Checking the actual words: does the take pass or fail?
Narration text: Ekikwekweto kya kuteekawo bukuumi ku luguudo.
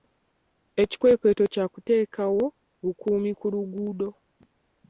pass